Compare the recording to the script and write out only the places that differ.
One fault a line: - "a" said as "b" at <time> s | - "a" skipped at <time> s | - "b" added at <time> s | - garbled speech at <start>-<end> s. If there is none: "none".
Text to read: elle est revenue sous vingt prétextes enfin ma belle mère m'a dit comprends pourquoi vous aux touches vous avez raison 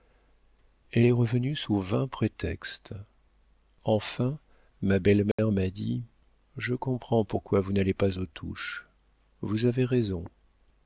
- "je" added at 6.6 s
- "n'allez pas" added at 7.7 s